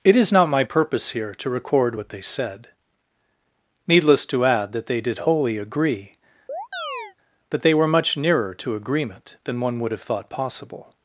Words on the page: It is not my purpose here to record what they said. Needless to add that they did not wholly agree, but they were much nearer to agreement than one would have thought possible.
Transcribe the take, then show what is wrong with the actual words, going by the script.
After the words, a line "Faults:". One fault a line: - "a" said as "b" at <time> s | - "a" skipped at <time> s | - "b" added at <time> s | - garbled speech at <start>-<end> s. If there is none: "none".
It is not my purpose here to record what they said. Needless to add that they did wholly agree, but they were much nearer to agreement than one would have thought possible.
Faults:
- "not" skipped at 5.2 s